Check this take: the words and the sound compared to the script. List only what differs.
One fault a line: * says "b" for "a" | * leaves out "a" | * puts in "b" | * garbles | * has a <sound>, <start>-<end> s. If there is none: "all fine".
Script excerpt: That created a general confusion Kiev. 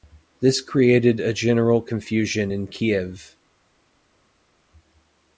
* says "This" for "That"
* puts in "in"